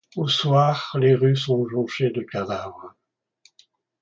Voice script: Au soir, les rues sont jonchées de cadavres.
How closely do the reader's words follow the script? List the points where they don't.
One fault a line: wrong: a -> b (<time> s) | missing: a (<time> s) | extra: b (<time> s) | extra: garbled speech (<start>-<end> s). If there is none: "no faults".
no faults